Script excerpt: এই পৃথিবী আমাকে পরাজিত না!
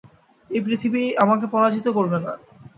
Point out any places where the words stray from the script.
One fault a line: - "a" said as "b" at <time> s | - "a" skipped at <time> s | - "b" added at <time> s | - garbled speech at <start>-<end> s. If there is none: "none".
- "করবে" added at 2.0 s